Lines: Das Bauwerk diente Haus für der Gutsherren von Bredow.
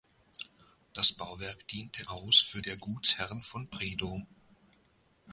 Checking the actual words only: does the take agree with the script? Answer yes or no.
yes